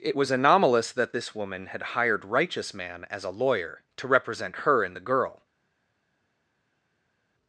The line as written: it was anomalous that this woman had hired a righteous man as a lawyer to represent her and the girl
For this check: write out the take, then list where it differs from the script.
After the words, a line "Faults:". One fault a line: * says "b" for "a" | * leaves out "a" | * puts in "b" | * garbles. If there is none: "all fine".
it was anomalous that this woman had hired righteous man as a lawyer to represent her and the girl
Faults:
* leaves out "a"